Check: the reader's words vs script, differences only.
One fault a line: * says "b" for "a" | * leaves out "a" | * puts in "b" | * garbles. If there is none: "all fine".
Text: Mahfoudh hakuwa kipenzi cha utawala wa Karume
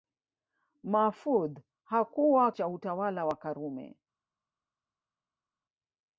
* leaves out "kipenzi"